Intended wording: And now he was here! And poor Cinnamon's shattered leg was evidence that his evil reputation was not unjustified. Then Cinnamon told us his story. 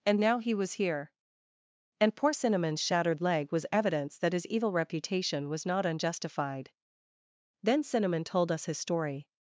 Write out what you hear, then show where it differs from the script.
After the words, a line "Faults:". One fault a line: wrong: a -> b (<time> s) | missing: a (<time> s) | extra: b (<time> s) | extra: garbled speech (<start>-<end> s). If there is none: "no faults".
And now he was here! And poor Cinnamon's shattered leg was evidence that his evil reputation was not unjustified. Then Cinnamon told us his story.
Faults:
no faults